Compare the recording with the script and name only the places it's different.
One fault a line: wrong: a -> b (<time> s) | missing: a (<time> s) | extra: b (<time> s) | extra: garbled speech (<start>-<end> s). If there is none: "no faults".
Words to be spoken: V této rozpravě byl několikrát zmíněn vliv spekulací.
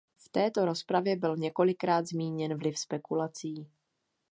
no faults